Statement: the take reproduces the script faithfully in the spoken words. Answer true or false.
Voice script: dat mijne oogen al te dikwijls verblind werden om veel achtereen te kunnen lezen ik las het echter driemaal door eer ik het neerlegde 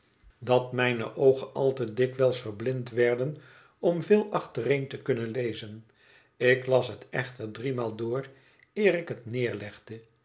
true